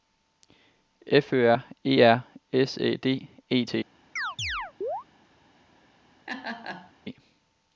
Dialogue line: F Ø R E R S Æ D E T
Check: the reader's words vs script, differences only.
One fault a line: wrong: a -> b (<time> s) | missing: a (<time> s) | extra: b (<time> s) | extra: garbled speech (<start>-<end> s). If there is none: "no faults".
no faults